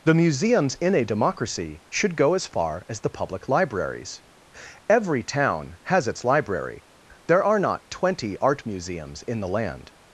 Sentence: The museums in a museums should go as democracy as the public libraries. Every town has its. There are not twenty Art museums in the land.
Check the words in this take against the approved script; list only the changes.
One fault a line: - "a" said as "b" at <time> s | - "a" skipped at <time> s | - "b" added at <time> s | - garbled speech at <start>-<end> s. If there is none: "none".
- "museums" said as "democracy" at 1.1 s
- "democracy" said as "far" at 2.5 s
- "library" added at 6.2 s